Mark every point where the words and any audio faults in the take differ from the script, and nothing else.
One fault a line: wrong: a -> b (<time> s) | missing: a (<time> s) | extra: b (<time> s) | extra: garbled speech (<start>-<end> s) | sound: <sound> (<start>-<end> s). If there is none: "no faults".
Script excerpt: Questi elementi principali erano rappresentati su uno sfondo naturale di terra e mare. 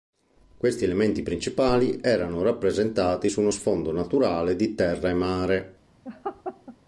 sound: laugh (6.0-6.8 s)